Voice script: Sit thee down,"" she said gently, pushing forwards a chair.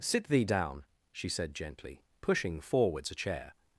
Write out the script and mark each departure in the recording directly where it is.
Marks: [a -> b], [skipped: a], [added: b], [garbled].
Sit thee down,"" she said gently, pushing forwards a chair.